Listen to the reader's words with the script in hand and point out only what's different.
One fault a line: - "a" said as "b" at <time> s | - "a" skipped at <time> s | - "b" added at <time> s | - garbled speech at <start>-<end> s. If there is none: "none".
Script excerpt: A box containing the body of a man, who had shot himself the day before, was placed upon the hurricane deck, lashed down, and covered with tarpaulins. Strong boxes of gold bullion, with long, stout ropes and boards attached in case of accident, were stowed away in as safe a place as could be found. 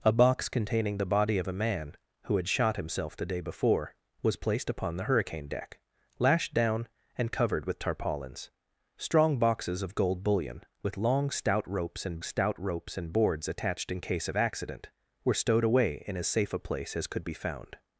- "stout ropes and" added at 12.2 s